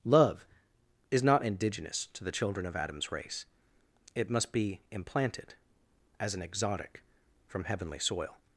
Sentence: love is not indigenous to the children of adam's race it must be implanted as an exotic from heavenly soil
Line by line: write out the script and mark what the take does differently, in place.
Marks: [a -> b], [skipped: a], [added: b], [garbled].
love is not indigenous to the children of adam's race it must be implanted as an exotic from heavenly soil